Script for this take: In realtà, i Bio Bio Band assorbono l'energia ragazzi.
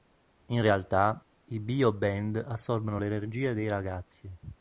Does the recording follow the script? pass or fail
fail